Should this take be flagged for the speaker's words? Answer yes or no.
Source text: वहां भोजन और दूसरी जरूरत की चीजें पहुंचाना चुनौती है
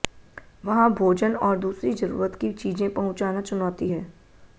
no